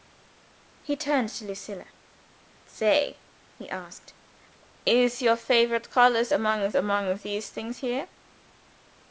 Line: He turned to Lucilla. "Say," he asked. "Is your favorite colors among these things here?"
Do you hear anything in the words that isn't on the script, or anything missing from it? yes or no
yes